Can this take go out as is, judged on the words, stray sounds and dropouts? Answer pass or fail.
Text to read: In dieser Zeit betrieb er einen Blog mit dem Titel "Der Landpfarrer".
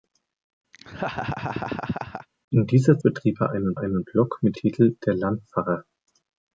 fail